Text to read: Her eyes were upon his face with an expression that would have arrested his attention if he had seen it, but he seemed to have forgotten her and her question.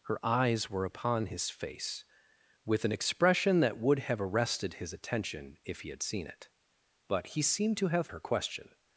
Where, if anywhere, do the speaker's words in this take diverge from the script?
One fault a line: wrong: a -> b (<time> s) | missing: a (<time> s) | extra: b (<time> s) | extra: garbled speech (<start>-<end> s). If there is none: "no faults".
missing: forgotten her and (8.1 s)